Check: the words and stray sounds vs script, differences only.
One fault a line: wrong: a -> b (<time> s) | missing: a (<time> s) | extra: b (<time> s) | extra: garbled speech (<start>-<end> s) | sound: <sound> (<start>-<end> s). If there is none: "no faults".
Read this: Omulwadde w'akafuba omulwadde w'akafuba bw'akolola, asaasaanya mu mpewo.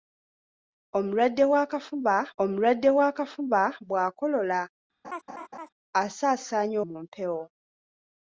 sound: laugh (5.0-5.7 s)